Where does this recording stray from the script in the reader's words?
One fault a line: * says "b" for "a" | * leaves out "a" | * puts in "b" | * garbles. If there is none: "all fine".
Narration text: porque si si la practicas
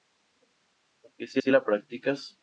all fine